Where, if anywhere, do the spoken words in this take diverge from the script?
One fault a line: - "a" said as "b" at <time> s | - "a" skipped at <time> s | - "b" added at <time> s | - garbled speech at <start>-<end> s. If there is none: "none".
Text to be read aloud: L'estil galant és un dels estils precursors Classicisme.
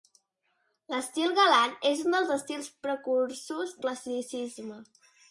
none